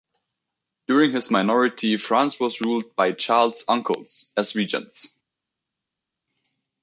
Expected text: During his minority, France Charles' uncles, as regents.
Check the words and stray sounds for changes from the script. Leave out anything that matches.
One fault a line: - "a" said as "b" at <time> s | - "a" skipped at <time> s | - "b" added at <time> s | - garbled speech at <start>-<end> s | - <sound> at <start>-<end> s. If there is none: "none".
- "was ruled by" added at 2.4 s